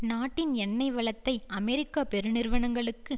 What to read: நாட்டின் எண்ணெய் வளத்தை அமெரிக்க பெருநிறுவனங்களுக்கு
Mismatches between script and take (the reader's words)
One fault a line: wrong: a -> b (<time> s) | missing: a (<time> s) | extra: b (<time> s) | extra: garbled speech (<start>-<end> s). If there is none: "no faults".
no faults